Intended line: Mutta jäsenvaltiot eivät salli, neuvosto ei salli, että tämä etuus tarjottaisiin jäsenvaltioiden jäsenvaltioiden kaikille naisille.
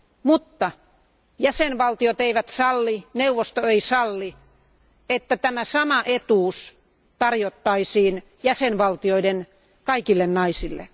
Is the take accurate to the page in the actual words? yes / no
no